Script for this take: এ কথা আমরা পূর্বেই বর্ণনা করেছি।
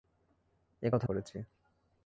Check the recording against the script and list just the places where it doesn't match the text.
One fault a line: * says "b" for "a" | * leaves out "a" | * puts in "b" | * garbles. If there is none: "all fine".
* leaves out "আমরা পূর্বেই বর্ণনা"